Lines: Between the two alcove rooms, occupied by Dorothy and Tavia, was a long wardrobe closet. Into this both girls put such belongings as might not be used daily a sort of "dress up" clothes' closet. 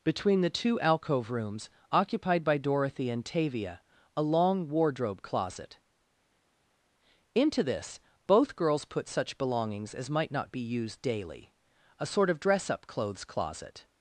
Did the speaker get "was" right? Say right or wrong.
wrong